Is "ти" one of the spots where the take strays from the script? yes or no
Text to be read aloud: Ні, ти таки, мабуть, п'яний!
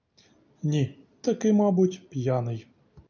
yes